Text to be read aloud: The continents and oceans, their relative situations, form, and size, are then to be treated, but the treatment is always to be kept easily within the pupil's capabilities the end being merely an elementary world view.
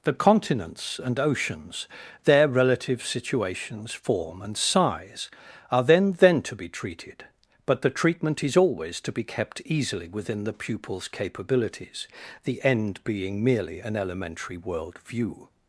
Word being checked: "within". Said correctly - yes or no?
yes